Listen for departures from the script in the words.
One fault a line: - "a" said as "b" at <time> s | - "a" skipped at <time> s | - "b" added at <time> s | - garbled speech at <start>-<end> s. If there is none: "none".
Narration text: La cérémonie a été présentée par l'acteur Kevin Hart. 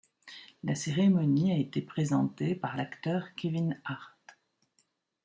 none